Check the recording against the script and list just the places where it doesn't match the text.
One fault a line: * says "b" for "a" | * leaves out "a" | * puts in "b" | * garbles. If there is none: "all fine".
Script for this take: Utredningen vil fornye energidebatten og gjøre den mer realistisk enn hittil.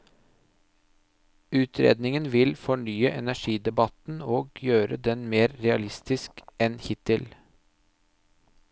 all fine